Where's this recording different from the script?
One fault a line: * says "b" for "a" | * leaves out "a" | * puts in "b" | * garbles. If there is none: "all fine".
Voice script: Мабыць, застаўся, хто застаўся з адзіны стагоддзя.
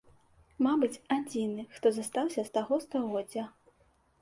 * says "адзіны" for "застаўся"
* says "таго" for "адзіны"